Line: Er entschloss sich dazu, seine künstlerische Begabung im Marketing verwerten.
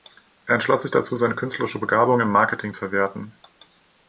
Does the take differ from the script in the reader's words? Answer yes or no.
no